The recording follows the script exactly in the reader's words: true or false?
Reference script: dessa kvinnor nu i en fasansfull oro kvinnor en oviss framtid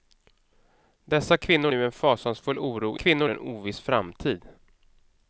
true